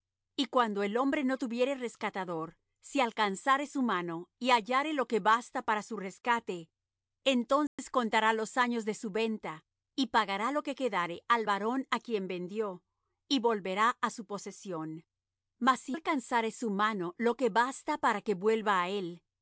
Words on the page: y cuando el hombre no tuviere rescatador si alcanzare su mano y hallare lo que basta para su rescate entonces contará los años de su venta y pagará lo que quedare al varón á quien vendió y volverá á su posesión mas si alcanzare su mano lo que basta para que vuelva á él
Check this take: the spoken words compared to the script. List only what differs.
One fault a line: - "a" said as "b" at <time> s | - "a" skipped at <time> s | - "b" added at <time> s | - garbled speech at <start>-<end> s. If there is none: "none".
none